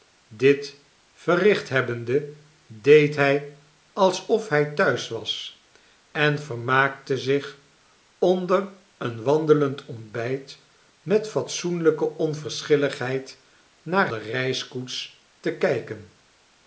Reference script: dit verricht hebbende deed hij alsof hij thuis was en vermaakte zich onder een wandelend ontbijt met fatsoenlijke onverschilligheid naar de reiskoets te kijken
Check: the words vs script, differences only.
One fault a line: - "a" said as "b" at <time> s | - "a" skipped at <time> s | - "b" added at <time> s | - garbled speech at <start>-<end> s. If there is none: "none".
none